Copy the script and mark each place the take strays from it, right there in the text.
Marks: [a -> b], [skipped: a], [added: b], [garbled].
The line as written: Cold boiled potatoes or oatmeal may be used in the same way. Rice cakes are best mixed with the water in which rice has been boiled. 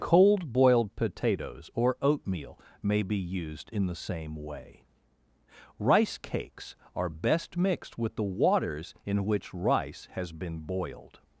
Cold boiled potatoes or oatmeal may be used in the same way. Rice cakes are best mixed with the [water -> waters] in which rice has been boiled.